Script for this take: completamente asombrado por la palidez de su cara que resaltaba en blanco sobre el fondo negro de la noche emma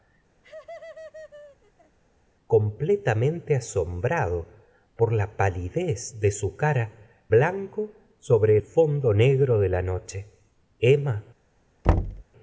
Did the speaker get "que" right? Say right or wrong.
wrong